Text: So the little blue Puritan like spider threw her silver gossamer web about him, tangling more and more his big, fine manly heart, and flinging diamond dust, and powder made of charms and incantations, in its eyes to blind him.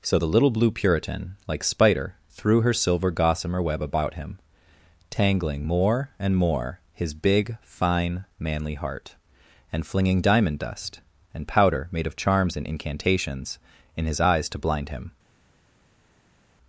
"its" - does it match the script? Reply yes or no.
no